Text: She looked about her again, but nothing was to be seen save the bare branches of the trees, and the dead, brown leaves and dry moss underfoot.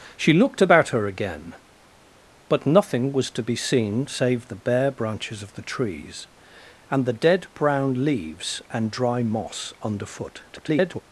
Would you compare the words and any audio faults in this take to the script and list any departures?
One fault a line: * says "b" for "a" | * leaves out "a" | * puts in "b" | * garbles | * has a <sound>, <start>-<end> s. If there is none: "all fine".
* garbles